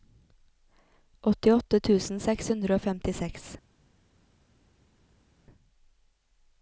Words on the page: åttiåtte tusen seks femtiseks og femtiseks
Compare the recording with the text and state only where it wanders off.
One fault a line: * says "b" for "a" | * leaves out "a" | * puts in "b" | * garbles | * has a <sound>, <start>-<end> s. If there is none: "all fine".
* says "hundre" for "femtiseks"